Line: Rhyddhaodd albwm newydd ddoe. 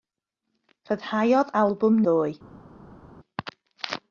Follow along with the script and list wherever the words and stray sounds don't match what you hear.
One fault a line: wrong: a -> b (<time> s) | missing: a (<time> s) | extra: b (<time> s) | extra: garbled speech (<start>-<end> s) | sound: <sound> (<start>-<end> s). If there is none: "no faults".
missing: newydd (2.0 s)